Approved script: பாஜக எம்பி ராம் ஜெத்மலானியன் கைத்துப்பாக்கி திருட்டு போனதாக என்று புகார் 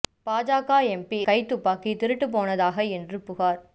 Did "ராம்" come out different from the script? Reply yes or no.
yes